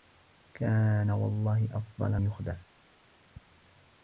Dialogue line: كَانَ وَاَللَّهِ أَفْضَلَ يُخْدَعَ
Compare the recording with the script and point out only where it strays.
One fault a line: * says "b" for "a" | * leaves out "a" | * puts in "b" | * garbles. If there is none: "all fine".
all fine